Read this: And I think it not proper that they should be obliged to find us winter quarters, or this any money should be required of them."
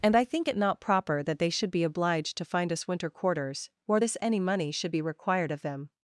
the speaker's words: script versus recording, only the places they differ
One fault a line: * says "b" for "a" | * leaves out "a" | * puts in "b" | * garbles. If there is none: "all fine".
all fine